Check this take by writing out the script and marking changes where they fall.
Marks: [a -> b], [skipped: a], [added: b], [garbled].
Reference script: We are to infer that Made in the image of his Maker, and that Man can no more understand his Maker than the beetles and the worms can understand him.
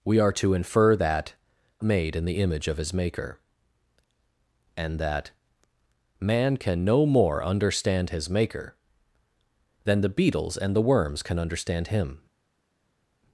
We are to infer that Made in the image of his Maker, and that Man can no more understand his Maker than the beetles and the worms can understand him.